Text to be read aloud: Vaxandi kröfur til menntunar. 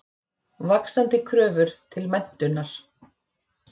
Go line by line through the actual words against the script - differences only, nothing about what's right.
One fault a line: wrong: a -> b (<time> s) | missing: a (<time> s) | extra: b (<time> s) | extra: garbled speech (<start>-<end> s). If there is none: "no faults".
no faults